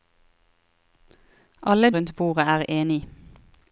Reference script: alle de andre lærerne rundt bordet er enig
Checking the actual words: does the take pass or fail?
fail